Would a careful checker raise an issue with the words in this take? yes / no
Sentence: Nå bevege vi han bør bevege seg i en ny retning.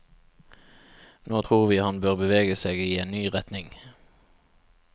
yes